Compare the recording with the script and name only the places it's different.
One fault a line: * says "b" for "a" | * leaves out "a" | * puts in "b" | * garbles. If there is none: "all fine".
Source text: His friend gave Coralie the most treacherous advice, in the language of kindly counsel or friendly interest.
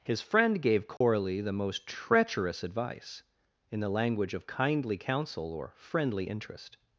all fine